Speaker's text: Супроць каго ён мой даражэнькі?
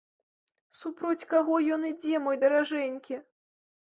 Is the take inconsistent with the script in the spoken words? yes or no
yes